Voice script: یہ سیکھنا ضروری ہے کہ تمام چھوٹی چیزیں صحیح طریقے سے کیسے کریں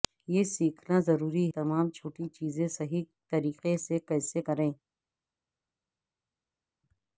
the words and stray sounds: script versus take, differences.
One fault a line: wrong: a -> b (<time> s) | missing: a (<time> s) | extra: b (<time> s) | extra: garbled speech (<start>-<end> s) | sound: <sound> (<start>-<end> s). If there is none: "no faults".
missing: ہے کہ (1.4 s)